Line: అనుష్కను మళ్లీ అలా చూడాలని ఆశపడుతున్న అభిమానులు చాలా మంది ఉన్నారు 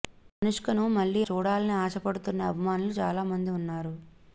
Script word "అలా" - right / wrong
wrong